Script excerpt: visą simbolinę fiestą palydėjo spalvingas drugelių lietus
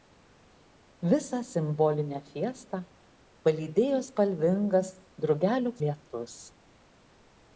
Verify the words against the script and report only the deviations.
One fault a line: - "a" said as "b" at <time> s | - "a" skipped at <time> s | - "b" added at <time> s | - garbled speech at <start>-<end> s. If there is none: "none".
none